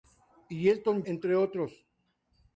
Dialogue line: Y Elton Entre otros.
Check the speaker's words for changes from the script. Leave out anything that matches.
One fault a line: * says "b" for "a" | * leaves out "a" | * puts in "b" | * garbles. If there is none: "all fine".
all fine